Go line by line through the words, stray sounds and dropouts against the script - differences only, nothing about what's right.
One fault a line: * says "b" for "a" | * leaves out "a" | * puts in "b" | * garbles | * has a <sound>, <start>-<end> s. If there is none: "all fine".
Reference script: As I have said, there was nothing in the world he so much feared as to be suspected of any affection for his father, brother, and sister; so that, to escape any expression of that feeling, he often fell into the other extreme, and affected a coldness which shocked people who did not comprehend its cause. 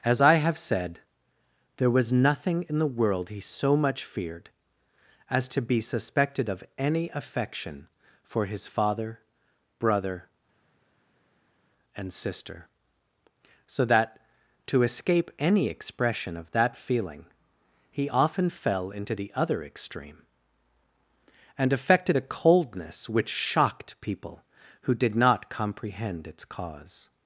all fine